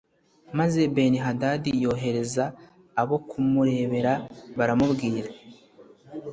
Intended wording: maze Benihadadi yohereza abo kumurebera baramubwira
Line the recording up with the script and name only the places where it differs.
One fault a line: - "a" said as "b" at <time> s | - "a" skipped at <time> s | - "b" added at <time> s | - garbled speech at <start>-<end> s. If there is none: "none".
none